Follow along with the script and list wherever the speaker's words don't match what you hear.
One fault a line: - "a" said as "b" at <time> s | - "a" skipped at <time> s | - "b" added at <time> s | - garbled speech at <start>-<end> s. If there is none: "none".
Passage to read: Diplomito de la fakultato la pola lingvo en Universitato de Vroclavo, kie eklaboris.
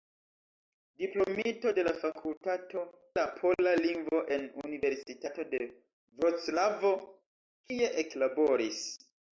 none